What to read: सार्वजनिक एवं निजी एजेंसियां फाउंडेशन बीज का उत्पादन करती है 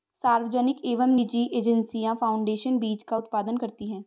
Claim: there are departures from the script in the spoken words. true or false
false